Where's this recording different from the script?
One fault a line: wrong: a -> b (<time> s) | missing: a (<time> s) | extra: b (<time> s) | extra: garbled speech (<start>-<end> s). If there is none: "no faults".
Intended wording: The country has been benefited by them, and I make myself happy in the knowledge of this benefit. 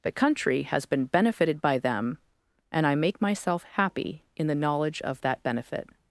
wrong: this -> that (5.2 s)